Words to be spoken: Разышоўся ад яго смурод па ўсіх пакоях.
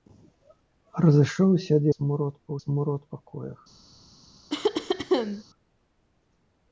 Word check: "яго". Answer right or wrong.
wrong